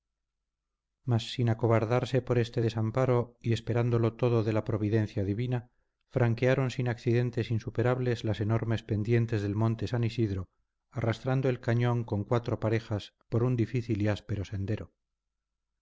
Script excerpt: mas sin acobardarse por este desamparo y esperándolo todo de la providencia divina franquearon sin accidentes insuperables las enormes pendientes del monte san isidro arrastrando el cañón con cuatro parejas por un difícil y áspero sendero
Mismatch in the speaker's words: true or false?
false